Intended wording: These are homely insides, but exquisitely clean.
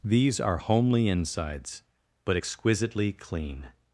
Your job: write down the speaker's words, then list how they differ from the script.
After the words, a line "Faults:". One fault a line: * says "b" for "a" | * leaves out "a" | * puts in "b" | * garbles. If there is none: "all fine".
These are homely insides, but exquisitely clean.
Faults:
all fine